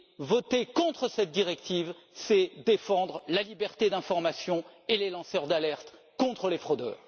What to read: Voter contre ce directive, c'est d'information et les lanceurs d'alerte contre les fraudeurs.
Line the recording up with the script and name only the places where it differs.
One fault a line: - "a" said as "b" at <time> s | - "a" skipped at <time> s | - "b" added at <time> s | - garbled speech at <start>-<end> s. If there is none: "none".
- "ce" said as "cette" at 1.1 s
- "défendre la liberté" added at 2.6 s